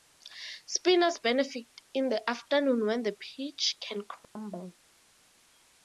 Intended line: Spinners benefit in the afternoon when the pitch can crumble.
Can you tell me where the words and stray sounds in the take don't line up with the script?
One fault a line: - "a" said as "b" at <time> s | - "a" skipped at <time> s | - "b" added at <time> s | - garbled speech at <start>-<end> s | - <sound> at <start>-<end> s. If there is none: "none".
- dropout at 4.2-4.4 s